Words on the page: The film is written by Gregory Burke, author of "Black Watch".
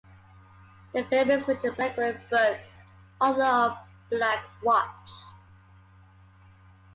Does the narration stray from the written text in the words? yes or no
yes